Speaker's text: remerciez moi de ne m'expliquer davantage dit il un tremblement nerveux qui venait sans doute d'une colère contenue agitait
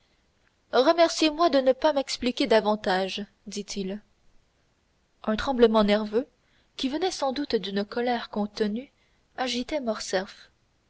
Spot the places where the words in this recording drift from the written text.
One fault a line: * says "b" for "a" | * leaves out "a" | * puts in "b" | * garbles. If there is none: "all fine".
* puts in "pas"